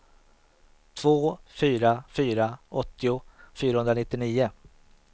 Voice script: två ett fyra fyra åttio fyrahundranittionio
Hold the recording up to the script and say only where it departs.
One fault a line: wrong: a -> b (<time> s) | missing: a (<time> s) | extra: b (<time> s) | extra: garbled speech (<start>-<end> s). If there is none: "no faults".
missing: ett (1.4 s)